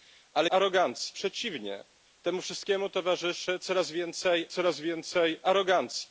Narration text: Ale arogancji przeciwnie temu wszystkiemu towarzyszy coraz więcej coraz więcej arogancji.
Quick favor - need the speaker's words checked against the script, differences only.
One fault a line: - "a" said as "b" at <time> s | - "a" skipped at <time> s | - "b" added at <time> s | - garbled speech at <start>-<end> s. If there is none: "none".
none